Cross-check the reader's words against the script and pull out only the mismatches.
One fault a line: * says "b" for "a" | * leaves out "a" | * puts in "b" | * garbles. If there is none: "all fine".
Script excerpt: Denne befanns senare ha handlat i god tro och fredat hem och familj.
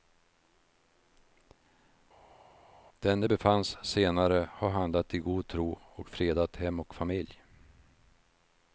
all fine